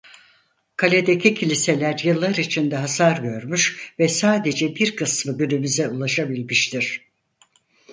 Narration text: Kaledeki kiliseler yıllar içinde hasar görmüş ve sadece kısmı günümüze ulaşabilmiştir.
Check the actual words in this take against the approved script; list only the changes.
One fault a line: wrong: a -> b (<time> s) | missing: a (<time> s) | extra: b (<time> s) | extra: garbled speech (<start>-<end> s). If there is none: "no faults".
extra: bir (4.8 s)